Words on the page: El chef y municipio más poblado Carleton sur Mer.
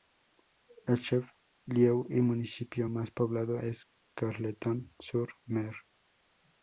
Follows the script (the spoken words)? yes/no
no